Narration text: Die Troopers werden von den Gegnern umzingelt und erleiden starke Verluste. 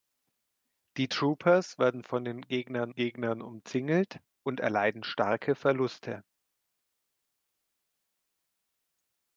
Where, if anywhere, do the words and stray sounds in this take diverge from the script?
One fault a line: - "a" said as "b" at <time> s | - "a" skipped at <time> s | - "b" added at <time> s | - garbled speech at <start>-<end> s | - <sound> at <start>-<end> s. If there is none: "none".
- "Gegnern" added at 2.9 s